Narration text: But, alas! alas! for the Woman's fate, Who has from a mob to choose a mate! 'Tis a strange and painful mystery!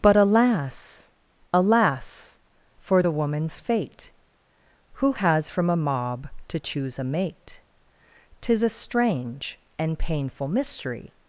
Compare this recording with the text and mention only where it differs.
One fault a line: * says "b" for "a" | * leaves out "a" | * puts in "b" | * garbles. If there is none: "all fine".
all fine